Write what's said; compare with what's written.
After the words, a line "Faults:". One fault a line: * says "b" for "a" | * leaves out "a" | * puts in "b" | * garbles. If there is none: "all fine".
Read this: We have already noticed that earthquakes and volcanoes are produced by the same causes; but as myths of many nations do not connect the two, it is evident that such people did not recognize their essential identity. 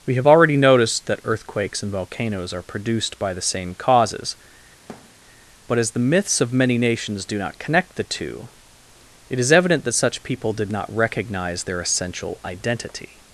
We have already noticed that earthquakes and volcanoes are produced by the same causes; but as the myths of many nations do not connect the two, it is evident that such people did not recognize their essential identity.
Faults:
* puts in "the"